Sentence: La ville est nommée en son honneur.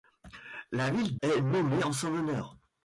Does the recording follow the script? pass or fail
pass